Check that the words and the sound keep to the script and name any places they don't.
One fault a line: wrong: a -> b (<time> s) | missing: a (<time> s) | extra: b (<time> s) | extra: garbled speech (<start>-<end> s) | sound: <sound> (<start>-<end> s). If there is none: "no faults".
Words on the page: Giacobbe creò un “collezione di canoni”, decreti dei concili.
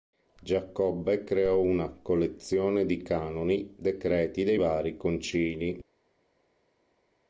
wrong: un -> una (1.6 s)
extra: vari (4.5 s)